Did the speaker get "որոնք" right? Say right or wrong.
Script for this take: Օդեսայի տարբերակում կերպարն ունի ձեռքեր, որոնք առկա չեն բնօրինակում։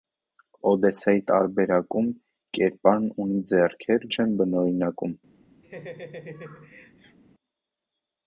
wrong